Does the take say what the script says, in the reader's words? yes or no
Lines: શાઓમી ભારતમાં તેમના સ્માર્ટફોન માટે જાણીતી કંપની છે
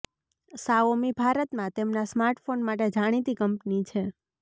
yes